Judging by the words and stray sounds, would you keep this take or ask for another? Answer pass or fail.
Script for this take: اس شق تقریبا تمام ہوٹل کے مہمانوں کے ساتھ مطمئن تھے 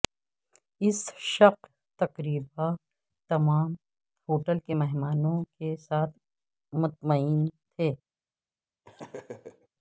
fail